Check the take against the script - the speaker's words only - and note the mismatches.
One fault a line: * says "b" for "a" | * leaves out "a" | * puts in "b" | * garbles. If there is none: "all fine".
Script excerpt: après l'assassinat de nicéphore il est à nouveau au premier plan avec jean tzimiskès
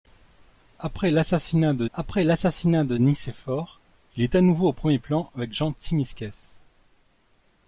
* puts in "après l'assassinat de"